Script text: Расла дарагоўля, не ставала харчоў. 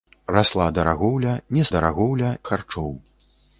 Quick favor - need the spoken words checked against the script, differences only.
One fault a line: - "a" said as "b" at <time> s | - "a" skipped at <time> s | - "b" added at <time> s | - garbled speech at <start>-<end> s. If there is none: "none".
- "ставала" said as "дарагоўля" at 1.7 s